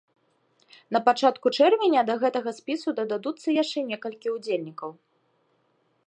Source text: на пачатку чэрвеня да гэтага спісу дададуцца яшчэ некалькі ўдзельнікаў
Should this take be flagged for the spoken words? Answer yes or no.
no